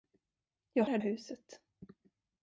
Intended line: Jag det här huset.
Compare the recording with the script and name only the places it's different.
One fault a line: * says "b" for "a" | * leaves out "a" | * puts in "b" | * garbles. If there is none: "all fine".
all fine